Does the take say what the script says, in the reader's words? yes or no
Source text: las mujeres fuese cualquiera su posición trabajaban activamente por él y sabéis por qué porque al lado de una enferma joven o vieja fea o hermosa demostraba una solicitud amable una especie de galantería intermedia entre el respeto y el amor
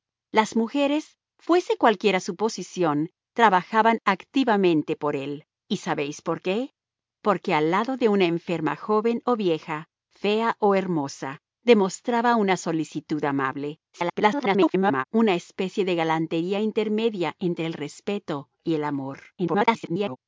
no